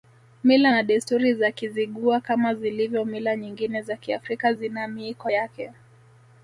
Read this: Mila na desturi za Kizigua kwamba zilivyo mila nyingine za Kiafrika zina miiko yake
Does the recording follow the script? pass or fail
fail